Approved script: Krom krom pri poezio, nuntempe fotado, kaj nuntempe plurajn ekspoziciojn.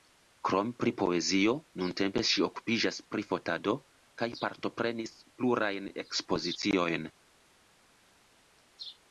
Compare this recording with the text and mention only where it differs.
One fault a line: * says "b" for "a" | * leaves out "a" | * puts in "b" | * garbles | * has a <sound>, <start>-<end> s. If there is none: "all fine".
* leaves out "krom"
* puts in "ŝi okupiĝas pri"
* says "partoprenis" for "nuntempe"